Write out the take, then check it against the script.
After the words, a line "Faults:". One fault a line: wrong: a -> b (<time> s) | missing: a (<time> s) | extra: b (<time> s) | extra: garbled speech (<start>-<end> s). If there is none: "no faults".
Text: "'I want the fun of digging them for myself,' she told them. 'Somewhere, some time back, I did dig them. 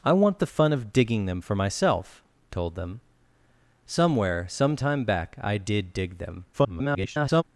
"'I want the fun of digging them for myself,' told them. 'Somewhere, some time back, I did dig them. [garbled]
Faults:
missing: she (2.2 s)
extra: garbled speech (6.5-7.4 s)